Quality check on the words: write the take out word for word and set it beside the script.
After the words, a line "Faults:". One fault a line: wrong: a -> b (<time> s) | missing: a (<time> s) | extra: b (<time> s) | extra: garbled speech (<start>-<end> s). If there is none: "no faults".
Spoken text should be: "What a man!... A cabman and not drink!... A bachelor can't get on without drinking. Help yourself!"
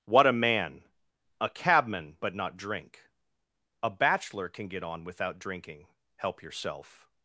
"What a man!... A cabman but not drink!... A bachelor can get on without drinking. Help yourself!"
Faults:
wrong: and -> but (2.2 s)
wrong: can't -> can (4.5 s)